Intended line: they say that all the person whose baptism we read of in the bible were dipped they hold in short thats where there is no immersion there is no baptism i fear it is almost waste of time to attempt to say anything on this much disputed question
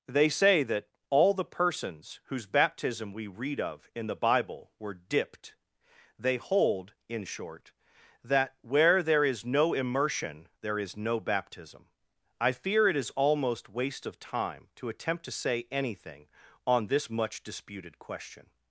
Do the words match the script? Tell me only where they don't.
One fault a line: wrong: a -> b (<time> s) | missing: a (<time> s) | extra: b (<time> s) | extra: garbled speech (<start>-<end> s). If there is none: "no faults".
wrong: person -> persons (1.4 s)
wrong: thats -> that (8.2 s)